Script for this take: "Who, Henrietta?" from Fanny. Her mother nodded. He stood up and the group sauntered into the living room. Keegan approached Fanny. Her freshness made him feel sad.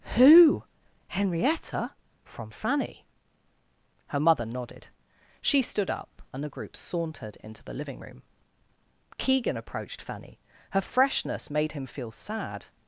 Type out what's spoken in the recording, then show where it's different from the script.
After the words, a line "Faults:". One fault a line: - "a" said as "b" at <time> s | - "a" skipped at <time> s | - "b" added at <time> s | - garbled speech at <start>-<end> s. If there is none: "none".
"Who, Henrietta?" from Fanny. Her mother nodded. She stood up and the group sauntered into the living room. Keegan approached Fanny. Her freshness made him feel sad.
Faults:
- "He" said as "She" at 5.4 s